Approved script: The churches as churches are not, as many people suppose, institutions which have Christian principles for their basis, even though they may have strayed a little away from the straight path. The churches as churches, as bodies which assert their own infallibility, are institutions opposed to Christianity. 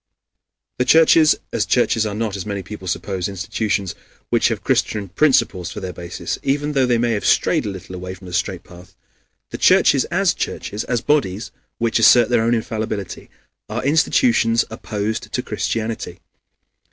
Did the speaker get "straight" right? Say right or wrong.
right